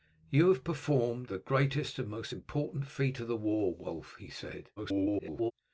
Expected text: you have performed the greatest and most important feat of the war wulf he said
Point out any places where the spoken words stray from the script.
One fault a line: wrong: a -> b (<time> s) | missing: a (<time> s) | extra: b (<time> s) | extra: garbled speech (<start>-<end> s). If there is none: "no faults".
extra: garbled speech (4.8-5.5 s)